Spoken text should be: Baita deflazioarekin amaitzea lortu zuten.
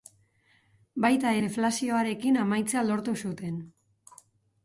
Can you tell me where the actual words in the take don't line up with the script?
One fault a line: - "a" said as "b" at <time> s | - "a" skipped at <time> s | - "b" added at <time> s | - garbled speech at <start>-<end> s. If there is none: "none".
none